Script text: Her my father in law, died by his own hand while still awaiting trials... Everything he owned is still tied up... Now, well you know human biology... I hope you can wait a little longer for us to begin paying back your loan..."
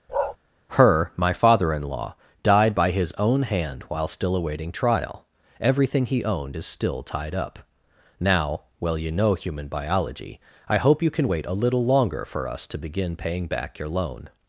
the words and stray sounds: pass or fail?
fail